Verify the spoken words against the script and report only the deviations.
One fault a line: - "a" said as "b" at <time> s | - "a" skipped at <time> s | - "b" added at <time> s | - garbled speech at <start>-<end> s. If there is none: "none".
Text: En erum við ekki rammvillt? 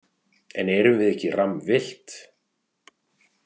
none